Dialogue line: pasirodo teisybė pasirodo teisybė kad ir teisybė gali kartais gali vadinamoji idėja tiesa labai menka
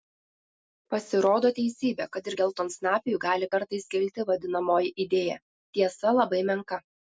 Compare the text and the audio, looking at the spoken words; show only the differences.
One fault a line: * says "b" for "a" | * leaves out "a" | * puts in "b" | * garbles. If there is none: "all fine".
* leaves out "pasirodo teisybė"
* says "geltonsnapiui" for "teisybė"
* says "kilti" for "gali"